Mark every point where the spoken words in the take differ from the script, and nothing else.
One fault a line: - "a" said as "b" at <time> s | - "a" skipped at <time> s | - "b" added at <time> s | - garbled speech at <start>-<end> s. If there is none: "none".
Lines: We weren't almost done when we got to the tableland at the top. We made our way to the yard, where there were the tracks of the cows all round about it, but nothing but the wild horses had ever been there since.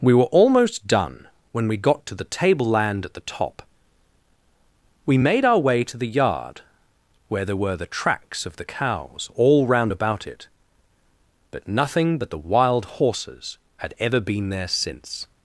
- "weren't" said as "were" at 0.1 s